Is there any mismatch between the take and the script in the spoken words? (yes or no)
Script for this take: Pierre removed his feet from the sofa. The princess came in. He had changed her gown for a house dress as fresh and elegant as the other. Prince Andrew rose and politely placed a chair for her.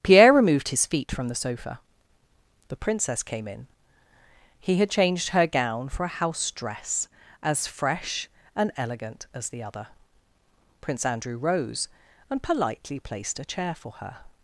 no